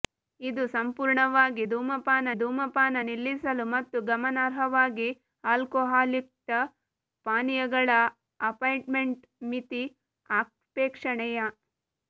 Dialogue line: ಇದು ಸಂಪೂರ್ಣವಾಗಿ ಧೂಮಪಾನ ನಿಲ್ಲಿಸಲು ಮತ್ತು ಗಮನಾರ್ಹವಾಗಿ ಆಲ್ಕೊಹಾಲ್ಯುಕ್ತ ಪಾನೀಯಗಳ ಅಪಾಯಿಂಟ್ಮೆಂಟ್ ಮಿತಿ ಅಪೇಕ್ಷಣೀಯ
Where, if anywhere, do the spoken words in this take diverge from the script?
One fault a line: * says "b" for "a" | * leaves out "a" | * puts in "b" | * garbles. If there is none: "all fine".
* puts in "ಧೂಮಪಾನ"